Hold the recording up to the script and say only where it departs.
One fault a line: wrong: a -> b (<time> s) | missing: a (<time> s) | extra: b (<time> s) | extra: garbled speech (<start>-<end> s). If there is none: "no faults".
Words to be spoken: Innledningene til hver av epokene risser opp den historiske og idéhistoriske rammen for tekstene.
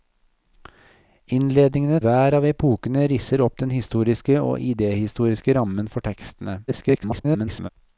missing: til (2.0 s)
extra: garbled speech (6.7-7.7 s)